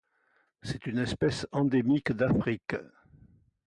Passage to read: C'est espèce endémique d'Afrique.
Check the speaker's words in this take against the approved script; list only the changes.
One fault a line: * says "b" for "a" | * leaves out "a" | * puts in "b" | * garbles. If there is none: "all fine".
* puts in "une"